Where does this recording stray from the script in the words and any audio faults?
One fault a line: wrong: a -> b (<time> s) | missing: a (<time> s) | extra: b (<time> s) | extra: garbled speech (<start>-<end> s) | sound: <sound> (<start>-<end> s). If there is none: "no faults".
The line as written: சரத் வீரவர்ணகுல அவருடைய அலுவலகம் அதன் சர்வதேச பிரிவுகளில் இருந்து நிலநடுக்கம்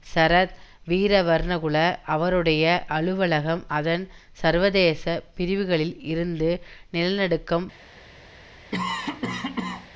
sound: cough (8.7-9.9 s)